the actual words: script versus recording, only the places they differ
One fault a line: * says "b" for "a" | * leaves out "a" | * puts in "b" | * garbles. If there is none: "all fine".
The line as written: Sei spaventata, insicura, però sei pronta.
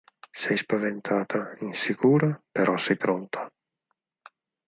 all fine